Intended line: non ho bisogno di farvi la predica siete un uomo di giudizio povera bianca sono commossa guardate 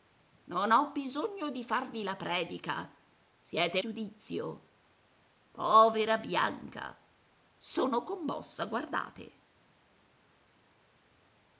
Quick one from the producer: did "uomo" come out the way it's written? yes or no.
no